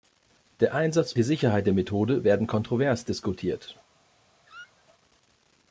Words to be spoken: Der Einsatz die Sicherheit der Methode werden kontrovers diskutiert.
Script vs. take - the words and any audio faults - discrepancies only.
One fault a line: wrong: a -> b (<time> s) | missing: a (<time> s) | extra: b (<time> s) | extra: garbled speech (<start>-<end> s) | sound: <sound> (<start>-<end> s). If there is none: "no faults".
sound: squeak (4.5-4.8 s)